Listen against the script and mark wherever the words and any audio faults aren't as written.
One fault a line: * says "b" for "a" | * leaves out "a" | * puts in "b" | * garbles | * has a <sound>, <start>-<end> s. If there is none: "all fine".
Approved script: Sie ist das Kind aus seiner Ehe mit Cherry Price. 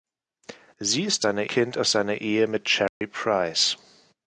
* says "seiner" for "das"
* has a dropout, 2.9-3.0 s